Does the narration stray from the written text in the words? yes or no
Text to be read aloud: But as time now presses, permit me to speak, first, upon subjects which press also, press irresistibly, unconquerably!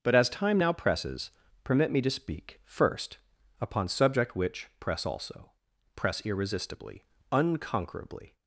yes